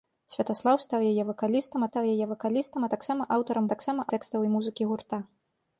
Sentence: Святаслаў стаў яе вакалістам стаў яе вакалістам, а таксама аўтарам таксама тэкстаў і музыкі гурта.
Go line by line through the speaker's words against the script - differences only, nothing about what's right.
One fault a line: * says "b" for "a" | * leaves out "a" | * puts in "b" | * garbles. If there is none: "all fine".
all fine